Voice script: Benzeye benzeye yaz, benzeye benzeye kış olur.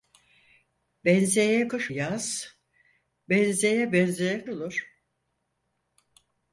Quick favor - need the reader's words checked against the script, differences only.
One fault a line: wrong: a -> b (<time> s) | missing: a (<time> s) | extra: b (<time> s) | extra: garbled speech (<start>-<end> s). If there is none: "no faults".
wrong: benzeye -> kış (1.7 s)
missing: kış (4.5 s)